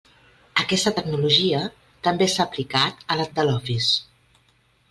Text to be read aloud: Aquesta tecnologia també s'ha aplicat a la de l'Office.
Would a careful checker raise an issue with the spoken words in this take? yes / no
no